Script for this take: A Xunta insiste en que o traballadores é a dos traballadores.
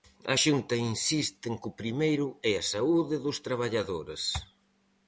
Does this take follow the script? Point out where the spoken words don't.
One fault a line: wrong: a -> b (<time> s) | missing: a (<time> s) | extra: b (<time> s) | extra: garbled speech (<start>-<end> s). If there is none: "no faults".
wrong: traballadores -> primeiro (1.8 s)
extra: saúde (2.7 s)